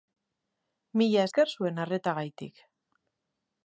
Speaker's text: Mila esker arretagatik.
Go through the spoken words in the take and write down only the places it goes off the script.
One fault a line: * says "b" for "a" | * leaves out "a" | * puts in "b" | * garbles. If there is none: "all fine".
* puts in "zuen"